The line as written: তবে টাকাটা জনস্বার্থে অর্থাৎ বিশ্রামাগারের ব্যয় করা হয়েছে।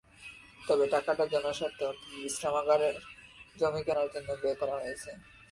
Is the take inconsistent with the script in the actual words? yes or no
yes